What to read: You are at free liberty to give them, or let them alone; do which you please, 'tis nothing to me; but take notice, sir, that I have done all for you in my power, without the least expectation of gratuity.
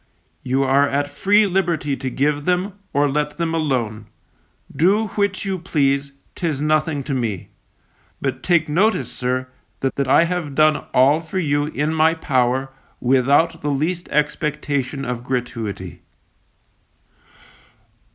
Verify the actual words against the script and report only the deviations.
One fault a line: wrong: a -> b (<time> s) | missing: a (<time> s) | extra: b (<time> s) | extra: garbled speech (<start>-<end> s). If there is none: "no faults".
extra: that (10.0 s)